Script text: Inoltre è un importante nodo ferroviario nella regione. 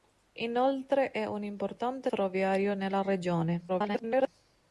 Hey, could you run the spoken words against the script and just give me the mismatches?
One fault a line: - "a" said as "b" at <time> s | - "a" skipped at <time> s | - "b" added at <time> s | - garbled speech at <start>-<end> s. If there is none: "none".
- "nodo" skipped at 2.1 s
- garbled speech at 3.7-4.3 s